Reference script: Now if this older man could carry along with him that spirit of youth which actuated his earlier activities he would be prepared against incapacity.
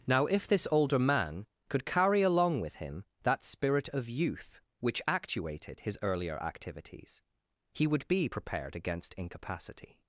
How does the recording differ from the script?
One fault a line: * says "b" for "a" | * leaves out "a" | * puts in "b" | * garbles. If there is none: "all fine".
all fine